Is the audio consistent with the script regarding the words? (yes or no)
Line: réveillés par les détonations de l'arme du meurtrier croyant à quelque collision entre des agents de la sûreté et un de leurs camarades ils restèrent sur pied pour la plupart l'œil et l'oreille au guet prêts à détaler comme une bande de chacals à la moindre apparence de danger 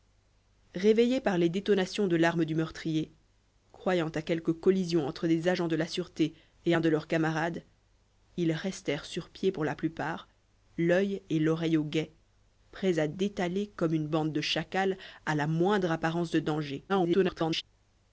no